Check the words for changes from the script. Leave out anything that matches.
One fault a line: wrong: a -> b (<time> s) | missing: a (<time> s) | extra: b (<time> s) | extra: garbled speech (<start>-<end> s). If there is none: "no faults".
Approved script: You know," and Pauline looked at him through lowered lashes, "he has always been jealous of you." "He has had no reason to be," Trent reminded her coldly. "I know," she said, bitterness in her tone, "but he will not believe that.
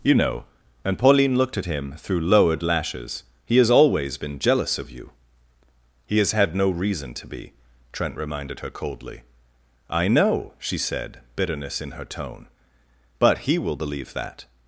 missing: not (13.8 s)